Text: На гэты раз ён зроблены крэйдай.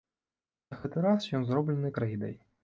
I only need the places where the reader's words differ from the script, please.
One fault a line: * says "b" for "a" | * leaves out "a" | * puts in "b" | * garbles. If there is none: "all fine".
all fine